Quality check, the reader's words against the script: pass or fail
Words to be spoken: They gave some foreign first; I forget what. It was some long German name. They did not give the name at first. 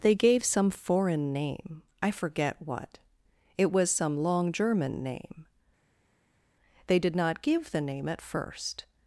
fail